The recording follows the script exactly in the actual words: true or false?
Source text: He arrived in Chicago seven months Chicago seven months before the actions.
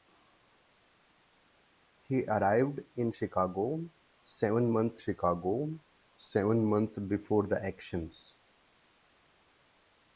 true